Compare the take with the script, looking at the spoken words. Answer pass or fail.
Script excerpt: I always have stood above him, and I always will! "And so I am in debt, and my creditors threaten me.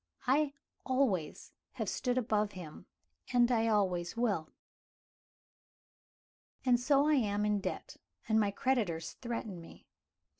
pass